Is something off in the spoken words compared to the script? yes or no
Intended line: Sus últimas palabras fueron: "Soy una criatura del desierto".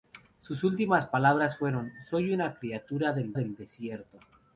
yes